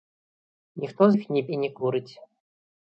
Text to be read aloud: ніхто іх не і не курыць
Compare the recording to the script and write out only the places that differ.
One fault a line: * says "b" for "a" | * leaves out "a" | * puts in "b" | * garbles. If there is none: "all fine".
all fine